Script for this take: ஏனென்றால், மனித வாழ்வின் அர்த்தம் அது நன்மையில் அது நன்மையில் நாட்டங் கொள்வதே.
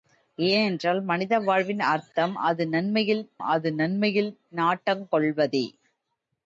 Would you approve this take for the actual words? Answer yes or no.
yes